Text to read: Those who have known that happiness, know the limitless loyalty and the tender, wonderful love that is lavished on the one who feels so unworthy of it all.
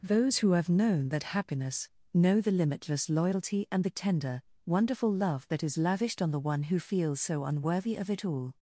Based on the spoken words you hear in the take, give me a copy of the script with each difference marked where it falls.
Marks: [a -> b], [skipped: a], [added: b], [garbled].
Those who have known that happiness, know the limitless loyalty and the tender, wonderful love that is lavished on the one who feels so unworthy of it all.